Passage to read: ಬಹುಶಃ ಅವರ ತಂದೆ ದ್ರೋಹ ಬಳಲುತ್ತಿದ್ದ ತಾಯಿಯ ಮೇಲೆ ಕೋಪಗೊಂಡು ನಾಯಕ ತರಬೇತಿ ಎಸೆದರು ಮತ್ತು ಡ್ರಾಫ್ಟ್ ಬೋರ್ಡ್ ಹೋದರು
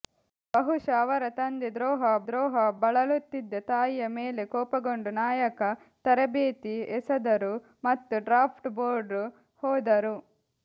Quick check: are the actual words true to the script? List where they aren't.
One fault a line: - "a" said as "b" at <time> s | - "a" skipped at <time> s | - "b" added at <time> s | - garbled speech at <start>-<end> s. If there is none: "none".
- "ದ್ರೋಹ" added at 2.2 s